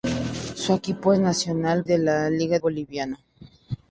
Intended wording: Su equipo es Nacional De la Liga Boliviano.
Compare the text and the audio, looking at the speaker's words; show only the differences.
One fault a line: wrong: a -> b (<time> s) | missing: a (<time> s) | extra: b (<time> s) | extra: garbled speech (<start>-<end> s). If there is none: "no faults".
no faults